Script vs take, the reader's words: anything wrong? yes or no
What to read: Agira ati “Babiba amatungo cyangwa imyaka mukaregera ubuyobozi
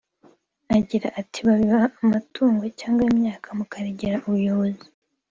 no